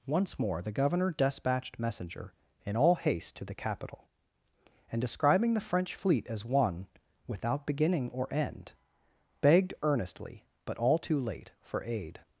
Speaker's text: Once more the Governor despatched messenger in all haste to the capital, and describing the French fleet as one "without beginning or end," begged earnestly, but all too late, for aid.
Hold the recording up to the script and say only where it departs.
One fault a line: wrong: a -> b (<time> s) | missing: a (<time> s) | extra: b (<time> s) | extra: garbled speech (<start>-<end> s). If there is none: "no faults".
no faults